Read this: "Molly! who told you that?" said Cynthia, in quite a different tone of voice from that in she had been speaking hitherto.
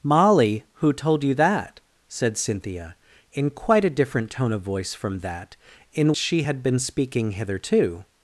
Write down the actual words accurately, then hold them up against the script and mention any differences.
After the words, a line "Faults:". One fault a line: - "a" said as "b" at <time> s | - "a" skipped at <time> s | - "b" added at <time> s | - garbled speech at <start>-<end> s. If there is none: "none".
"Molly! who told you that?" said Cynthia, in quite a different tone of voice from that in she had been speaking hitherto.
Faults:
none